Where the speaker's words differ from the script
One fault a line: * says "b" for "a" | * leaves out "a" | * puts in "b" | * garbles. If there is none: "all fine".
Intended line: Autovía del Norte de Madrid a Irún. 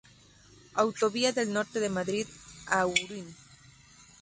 all fine